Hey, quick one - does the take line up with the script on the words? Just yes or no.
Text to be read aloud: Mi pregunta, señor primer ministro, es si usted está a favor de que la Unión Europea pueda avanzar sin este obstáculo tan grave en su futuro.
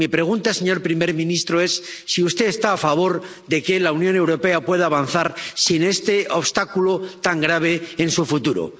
yes